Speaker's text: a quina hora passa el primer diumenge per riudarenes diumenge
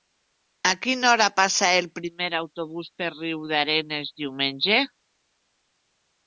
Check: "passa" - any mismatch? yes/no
no